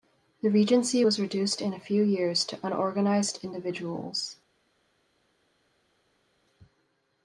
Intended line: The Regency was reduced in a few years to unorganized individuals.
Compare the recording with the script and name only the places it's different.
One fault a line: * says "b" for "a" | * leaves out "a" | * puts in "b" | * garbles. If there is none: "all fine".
all fine